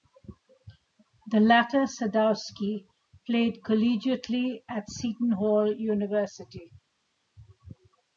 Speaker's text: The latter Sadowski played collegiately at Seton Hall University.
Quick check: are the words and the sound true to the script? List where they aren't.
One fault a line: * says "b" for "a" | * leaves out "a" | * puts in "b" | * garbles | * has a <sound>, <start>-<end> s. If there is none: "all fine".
all fine